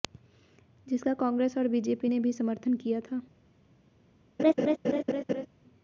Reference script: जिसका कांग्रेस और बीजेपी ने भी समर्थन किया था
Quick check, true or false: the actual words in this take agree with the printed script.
true